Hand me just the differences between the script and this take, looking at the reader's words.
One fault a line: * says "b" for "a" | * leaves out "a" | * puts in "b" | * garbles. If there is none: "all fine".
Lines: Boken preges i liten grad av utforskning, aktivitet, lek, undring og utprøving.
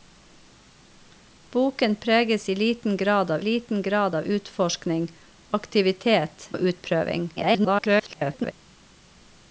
* puts in "liten grad av"
* leaves out "lek undring"
* garbles